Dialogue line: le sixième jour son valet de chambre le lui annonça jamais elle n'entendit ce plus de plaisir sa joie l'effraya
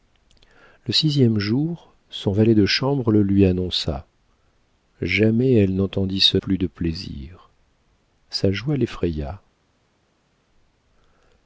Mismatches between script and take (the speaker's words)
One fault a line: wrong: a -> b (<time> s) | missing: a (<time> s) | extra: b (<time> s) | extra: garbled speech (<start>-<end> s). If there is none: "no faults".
no faults